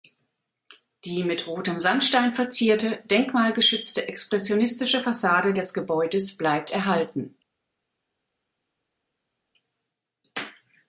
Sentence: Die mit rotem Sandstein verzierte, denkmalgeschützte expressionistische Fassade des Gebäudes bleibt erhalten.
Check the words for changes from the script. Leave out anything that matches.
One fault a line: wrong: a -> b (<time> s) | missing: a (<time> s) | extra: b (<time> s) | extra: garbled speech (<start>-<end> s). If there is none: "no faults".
no faults